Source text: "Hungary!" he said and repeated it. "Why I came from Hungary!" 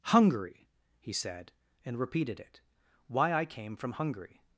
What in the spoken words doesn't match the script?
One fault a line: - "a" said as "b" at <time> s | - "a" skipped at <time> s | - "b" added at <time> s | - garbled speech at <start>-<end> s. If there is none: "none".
none